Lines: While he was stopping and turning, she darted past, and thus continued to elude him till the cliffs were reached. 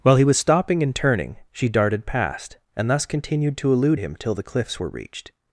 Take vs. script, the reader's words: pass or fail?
pass